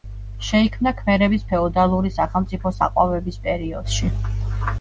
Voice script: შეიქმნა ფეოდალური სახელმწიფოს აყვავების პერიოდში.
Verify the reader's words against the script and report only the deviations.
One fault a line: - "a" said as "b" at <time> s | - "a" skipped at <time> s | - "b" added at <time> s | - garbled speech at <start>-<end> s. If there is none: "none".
- "ქმერების" added at 1.0 s